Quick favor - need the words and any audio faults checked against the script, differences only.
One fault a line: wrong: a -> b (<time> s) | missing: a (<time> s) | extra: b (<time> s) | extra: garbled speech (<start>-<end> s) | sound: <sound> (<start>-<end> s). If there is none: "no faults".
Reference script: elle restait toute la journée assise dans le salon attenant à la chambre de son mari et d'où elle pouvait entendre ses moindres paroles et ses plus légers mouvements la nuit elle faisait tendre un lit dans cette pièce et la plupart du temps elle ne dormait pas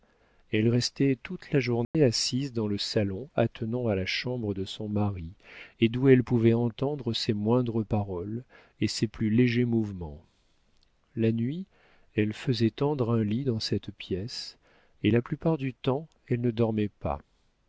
sound: dropout (1.8-1.9 s)